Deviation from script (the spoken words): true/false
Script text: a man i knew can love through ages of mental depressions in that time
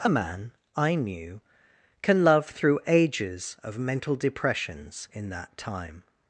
false